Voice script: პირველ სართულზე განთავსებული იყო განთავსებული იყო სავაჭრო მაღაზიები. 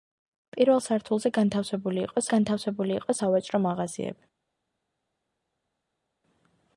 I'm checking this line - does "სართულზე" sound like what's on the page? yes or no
yes